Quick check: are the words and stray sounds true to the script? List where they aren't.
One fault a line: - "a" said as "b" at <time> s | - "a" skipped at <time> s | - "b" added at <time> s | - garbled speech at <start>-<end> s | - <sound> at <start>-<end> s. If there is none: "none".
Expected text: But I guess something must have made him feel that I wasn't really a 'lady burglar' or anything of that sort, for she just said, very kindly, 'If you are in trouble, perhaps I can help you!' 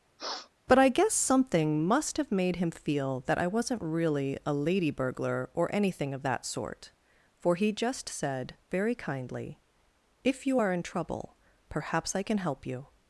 - sniff at 0.2-0.5 s
- "she" said as "he" at 7.5 s